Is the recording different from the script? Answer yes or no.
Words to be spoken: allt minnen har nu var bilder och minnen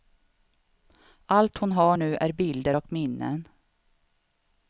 yes